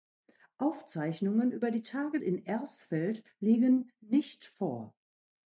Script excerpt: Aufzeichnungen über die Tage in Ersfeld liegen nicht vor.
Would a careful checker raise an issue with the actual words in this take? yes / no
no